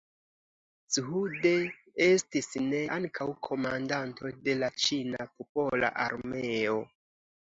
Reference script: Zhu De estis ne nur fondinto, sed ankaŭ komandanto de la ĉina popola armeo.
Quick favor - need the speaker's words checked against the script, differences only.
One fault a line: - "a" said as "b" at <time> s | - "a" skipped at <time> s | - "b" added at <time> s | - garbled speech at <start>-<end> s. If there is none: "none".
- "nur fondinto sed" skipped at 2.8 s